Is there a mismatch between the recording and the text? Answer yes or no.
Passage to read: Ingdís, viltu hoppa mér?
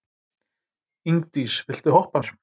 no